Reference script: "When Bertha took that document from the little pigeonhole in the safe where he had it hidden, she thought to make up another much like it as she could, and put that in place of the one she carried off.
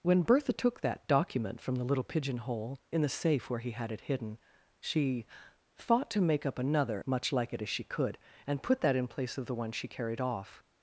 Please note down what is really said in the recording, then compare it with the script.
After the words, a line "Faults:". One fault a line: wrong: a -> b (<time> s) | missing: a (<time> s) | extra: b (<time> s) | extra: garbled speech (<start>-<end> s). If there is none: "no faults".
"When Bertha took that document from the little pigeonhole in the safe where he had it hidden, she thought to make up another much like it as she could, and put that in place of the one she carried off.
Faults:
no faults